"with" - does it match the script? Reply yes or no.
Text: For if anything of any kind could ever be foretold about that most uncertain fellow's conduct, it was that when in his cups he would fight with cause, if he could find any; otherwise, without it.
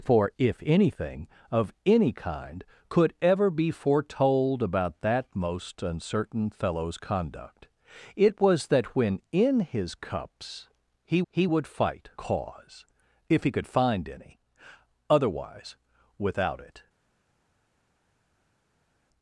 no